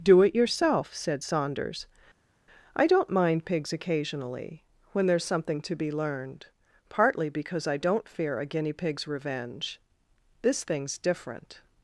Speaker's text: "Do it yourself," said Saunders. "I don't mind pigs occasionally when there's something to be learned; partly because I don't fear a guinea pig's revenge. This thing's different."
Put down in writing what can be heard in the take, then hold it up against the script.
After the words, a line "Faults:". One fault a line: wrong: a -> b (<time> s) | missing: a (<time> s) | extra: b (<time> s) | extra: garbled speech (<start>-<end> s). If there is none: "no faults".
"Do it yourself," said Saunders. "I don't mind pigs occasionally when there's something to be learned; partly because I don't fear a guinea pig's revenge. This thing's different."
Faults:
no faults